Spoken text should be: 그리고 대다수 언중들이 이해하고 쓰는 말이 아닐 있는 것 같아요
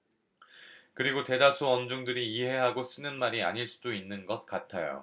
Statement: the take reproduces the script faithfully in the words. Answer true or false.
false